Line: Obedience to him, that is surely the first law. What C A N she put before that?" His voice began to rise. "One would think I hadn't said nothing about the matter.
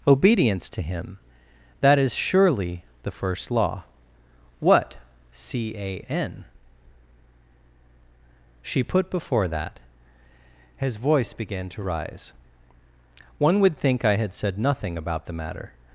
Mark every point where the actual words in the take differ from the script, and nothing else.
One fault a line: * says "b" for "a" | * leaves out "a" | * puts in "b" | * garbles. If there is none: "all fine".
* says "had" for "hadn't"